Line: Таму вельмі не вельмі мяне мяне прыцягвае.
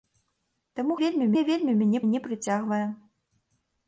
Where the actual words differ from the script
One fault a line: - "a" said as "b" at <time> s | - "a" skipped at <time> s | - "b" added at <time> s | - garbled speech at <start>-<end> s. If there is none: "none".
none